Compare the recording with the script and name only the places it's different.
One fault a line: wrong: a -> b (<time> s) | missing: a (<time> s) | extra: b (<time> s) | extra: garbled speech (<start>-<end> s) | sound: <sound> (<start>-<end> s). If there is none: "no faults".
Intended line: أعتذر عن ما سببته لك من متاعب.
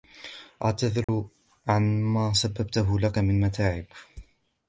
sound: dropout (1.0-1.1 s)